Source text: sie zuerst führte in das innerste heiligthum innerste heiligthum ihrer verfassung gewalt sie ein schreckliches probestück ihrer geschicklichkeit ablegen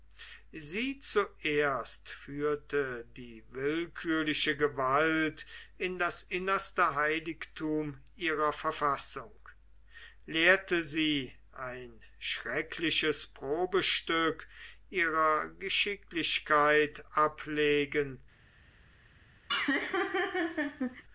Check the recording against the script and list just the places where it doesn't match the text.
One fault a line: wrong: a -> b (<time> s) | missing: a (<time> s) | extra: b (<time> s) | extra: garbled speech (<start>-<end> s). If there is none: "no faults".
extra: die willkürliche gewalt (3.1 s)
missing: innerste heiligthum (8.0 s)
wrong: gewalt -> lehrte (10.3 s)